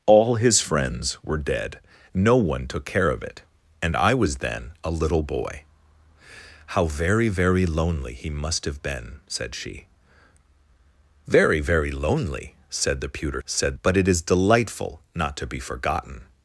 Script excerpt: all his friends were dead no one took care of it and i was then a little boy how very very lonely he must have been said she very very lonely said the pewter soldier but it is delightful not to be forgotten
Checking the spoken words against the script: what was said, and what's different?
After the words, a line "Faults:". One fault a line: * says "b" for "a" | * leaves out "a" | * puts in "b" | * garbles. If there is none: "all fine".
all his friends were dead no one took care of it and i was then a little boy how very very lonely he must have been said she very very lonely said the pewter said but it is delightful not to be forgotten
Faults:
* says "said" for "soldier"